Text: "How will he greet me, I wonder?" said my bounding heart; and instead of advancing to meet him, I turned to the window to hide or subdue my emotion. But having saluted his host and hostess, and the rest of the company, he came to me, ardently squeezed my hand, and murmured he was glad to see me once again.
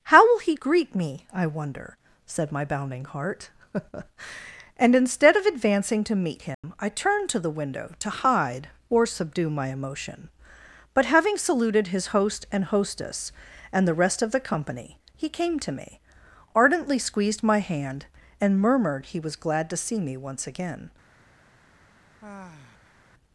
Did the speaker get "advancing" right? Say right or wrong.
right